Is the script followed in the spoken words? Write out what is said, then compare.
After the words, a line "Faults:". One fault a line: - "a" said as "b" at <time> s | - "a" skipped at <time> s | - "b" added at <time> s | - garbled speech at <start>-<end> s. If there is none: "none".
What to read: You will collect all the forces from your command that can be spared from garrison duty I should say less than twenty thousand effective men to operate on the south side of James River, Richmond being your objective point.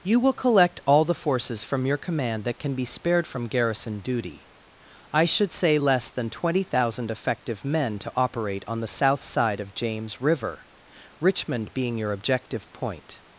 You will collect all the forces from your command that can be spared from garrison duty I should say less than twenty thousand effective men to operate on the south side of James River, Richmond being your objective point.
Faults:
none